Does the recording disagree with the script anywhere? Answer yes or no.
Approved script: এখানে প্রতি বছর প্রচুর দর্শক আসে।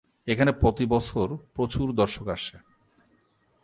no